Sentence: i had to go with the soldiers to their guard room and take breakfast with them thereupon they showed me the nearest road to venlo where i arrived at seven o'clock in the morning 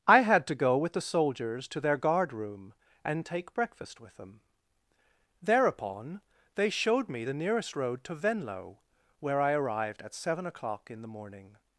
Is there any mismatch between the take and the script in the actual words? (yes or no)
no